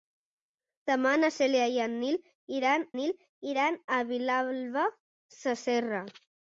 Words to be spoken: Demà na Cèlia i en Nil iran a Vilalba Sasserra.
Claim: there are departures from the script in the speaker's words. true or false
true